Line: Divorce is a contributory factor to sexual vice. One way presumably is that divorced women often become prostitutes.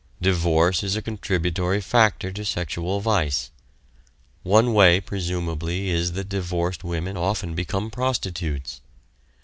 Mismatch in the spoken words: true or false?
false